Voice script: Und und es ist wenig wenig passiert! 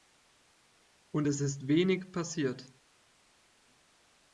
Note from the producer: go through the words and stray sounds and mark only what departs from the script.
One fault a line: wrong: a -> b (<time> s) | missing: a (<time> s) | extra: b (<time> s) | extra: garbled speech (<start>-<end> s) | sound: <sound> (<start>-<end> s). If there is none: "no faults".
missing: und (1.3 s)
missing: wenig (2.1 s)